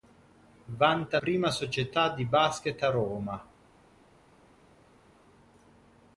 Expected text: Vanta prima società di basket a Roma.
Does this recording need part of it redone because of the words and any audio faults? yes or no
no